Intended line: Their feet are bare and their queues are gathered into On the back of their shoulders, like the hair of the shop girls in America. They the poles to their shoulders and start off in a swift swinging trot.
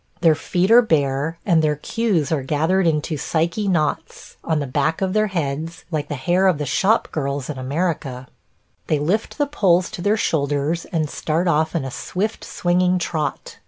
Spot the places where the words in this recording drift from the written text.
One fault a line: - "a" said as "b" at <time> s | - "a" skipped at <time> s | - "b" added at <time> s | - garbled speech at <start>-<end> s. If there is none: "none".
- "Psyche knots" added at 3.2 s
- "shoulders" said as "heads" at 5.3 s
- "lift" added at 9.0 s